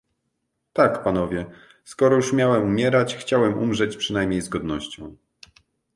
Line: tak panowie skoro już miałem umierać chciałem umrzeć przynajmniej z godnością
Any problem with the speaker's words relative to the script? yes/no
no